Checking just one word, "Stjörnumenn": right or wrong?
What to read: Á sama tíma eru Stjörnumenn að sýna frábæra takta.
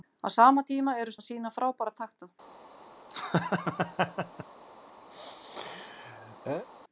wrong